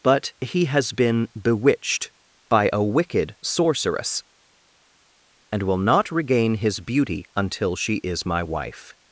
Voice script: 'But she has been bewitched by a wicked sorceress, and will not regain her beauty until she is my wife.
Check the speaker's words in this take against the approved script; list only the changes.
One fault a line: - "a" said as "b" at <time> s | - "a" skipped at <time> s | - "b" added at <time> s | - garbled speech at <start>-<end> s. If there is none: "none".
- "she" said as "he" at 0.4 s
- "her" said as "his" at 6.5 s